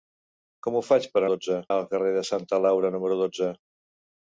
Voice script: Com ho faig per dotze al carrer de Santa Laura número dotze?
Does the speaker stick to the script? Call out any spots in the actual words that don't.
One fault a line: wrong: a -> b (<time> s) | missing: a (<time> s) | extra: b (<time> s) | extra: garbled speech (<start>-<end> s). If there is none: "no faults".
no faults